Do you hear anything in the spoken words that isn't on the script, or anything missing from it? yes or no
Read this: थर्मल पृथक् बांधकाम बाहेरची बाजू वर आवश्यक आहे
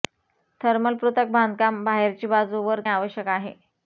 no